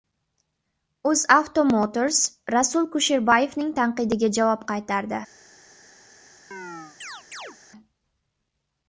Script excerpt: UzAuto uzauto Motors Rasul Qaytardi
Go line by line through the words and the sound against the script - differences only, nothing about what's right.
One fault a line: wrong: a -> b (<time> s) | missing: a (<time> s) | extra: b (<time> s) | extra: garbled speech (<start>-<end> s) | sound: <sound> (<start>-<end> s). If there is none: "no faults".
missing: uzauto (1.6 s)
extra: Kusherbayevning tanqidiga javob (3.0 s)
sound: chirp (6.5-7.6 s)